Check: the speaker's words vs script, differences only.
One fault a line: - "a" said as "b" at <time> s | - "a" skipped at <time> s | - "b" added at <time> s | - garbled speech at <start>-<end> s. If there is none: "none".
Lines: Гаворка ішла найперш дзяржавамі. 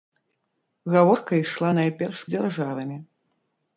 none